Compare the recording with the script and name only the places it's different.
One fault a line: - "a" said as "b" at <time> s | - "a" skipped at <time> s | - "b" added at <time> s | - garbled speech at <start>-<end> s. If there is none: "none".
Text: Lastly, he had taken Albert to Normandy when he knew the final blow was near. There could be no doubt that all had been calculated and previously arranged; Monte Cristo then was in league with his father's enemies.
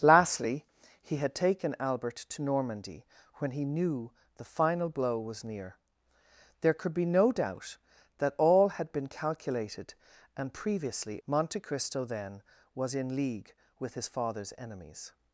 - "arranged" skipped at 11.2 s